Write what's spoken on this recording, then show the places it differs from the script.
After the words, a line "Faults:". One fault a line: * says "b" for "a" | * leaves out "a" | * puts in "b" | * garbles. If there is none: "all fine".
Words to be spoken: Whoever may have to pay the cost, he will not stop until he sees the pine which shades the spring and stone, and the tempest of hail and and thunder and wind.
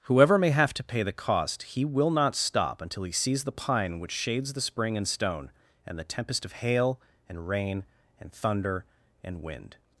Whoever may have to pay the cost, he will not stop until he sees the pine which shades the spring and stone, and the tempest of hail and rain and thunder and wind.
Faults:
* puts in "rain"